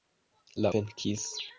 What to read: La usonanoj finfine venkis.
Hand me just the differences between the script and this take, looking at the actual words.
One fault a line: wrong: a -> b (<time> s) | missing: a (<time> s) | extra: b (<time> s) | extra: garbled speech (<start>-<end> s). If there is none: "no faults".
missing: usonanoj finfine (0.7 s)